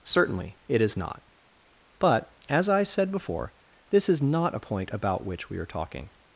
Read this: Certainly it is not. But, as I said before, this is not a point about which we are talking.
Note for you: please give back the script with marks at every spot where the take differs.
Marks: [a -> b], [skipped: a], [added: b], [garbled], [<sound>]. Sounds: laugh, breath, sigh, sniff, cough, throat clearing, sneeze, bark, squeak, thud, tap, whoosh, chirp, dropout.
Certainly it is not. But, as I said before, this is not a point about which we are talking.